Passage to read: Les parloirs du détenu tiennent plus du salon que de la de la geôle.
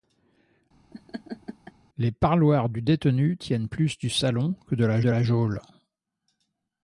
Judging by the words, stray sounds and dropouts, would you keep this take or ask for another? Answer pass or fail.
fail